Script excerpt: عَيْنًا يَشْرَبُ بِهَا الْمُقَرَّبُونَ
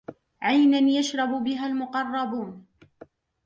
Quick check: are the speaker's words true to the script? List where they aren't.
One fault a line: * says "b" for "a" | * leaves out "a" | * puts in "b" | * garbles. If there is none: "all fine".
all fine